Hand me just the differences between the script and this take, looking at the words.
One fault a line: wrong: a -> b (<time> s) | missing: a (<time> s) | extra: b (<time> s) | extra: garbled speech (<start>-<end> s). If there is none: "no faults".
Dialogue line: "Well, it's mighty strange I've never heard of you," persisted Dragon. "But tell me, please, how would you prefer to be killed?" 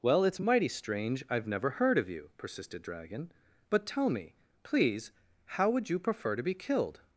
no faults